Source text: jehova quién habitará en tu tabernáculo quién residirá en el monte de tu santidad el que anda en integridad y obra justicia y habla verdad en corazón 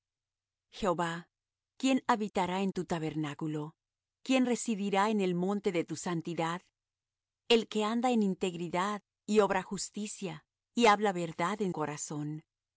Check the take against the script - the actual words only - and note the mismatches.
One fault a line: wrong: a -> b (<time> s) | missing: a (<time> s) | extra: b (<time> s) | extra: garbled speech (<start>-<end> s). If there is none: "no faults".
no faults